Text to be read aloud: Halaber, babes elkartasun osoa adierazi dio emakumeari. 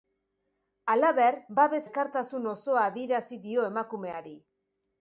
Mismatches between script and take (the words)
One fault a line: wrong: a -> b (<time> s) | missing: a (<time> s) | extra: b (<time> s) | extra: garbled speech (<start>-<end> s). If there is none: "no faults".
no faults